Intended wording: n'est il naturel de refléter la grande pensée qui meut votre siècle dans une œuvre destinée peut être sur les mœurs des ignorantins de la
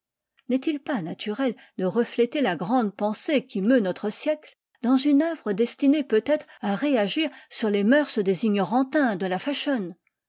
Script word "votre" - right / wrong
wrong